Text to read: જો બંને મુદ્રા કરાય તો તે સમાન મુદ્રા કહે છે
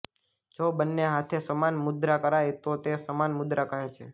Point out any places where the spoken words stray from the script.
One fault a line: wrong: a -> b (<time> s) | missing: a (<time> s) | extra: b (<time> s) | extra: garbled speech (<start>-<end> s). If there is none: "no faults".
extra: હાથે સમાન (1.1 s)